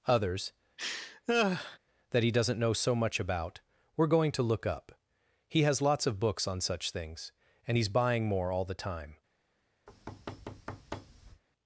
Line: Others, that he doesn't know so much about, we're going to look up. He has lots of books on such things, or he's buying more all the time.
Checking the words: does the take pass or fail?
fail